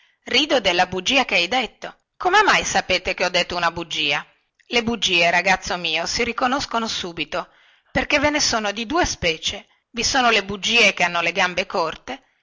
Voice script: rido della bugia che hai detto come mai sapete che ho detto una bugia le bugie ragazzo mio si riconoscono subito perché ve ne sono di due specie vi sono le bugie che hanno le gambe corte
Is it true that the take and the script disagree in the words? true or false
false